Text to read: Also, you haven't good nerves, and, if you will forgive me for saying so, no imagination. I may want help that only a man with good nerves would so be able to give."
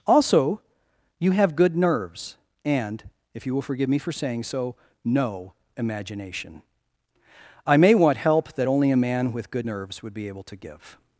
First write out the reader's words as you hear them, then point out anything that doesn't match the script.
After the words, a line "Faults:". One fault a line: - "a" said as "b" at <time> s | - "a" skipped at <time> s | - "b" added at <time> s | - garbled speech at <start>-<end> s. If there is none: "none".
Also, you have good nerves, and, if you will forgive me for saying so, no imagination. I may want help that only a man with good nerves would be able to give."
Faults:
- "haven't" said as "have" at 1.3 s
- "so" skipped at 10.1 s